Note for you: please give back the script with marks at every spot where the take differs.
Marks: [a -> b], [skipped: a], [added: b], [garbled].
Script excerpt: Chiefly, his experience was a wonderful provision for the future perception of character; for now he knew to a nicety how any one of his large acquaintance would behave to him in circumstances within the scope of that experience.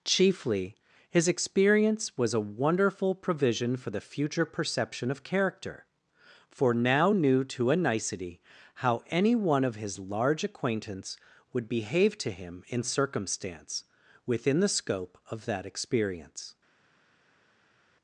Chiefly, his experience was a wonderful provision for the future perception of character; for now [skipped: he] knew to a nicety how any one of his large acquaintance would behave to him in [circumstances -> circumstance] within the scope of that experience.